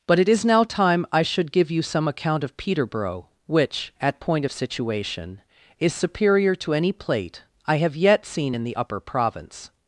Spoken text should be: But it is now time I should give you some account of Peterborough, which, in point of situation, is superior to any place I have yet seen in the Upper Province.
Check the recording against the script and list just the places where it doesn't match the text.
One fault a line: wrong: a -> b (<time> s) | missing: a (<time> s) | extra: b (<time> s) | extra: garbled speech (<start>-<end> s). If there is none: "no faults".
wrong: in -> at (4.0 s)
wrong: place -> plate (6.9 s)